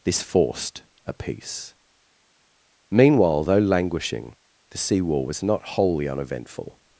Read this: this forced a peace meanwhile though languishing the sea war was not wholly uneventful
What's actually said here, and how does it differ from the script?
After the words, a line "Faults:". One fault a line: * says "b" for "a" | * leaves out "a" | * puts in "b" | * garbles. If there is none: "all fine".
this forced a peace meanwhile though languishing the sea war was not wholly uneventful
Faults:
all fine